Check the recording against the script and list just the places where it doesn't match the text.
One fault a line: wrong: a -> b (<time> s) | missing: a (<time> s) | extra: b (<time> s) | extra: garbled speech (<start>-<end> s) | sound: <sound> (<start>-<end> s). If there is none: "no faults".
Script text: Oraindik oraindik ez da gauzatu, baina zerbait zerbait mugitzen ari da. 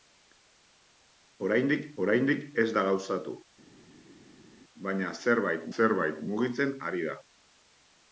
no faults